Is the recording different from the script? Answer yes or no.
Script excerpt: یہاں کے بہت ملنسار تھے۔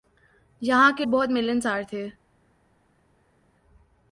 no